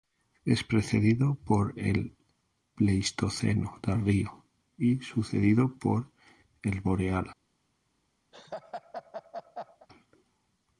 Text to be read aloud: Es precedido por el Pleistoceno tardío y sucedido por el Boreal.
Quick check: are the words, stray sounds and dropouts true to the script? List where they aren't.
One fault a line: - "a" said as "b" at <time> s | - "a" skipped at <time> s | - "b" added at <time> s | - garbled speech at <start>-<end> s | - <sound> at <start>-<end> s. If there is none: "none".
- laugh at 8.3-9.9 s